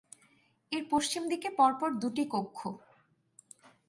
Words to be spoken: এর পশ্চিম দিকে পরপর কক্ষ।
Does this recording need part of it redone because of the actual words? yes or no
yes